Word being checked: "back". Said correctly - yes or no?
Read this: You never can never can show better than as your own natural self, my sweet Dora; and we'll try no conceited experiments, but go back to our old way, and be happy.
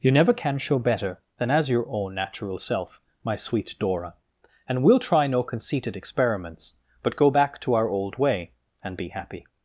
yes